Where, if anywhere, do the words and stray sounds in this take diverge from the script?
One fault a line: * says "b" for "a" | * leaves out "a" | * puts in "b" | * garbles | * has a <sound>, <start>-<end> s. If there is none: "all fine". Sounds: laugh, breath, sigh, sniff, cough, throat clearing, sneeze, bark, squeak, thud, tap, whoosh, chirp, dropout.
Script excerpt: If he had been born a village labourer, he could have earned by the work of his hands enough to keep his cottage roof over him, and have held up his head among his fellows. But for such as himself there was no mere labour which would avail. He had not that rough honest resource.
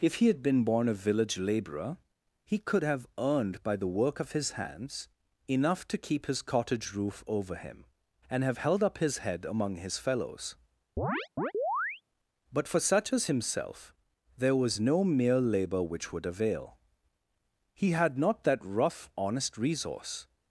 * has a chirp, 11.0-12.0 s